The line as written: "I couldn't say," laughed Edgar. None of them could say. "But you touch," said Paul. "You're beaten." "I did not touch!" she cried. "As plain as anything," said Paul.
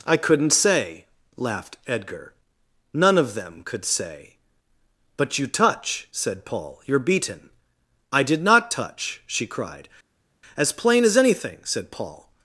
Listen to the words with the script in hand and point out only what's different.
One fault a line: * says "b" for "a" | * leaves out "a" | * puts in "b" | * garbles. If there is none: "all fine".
all fine